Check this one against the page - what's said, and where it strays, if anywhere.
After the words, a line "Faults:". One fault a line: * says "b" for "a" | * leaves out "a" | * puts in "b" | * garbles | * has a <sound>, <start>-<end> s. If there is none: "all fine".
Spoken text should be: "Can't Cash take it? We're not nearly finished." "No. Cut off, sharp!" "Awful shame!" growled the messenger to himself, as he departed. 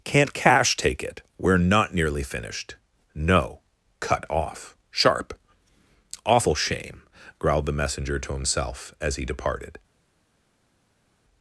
"Can't Cash take it? We're not nearly finished." "No. Cut off, sharp!" "Awful shame!" growled the messenger to himself, as he departed.
Faults:
all fine